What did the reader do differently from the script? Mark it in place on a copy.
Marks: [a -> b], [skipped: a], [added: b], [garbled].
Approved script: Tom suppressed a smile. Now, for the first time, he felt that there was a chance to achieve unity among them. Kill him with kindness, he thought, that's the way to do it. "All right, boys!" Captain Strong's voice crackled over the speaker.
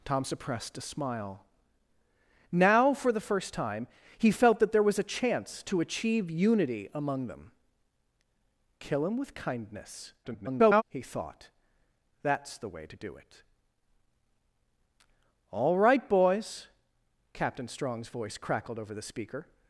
Tom suppressed a smile. Now, for the first time, he felt that there was a chance to achieve unity among them. Kill him with kindness, [garbled] he thought, that's the way to do it. "All right, boys!" Captain Strong's voice crackled over the speaker.